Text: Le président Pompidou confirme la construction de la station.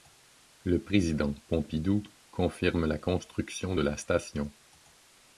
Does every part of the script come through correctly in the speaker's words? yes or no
yes